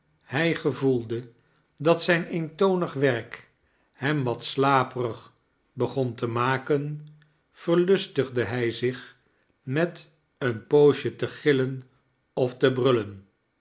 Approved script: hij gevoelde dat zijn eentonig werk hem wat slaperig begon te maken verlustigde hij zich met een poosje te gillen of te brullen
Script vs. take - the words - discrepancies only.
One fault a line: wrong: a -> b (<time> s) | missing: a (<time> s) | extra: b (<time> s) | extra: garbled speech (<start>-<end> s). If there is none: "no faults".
no faults